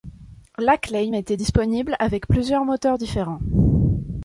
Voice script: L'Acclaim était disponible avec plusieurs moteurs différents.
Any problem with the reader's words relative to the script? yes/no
no